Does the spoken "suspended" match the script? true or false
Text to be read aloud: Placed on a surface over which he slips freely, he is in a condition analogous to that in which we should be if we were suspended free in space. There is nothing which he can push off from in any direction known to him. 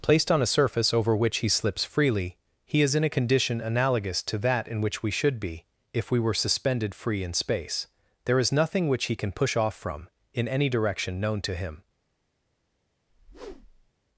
true